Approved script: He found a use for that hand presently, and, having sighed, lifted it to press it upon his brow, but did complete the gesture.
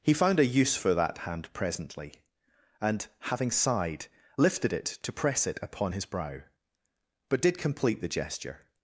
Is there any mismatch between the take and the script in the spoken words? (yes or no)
no